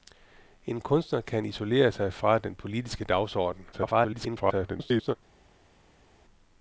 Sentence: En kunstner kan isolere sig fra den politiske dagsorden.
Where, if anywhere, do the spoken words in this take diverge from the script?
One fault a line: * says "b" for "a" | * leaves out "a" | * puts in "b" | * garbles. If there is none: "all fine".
* garbles